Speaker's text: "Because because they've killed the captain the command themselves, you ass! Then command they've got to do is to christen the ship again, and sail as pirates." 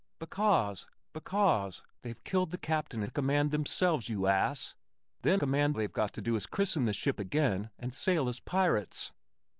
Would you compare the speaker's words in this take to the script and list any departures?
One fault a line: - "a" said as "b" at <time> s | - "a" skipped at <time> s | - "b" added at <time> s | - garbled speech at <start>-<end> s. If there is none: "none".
none